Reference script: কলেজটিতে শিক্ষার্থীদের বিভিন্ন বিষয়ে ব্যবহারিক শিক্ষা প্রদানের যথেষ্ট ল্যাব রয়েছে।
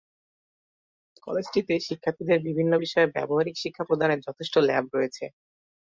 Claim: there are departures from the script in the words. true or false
false